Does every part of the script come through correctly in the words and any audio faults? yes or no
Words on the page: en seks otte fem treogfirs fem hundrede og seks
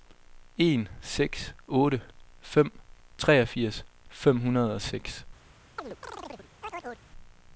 no